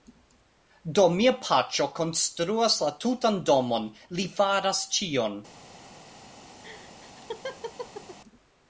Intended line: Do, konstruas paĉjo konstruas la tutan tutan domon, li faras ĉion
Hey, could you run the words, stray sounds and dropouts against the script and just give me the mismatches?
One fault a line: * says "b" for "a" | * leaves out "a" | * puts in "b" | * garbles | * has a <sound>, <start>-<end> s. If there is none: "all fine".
* says "mia" for "konstruas"
* leaves out "tutan"
* has a laugh, 6.6-8.2 s